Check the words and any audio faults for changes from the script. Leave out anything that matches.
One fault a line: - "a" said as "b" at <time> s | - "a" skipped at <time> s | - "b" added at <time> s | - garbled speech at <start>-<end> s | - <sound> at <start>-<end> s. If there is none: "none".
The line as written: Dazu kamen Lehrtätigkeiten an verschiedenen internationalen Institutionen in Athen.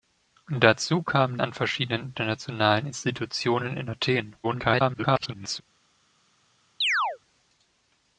- "Lehrtätigkeiten" skipped at 1.4 s
- garbled speech at 4.4-5.6 s
- chirp at 6.8-7.2 s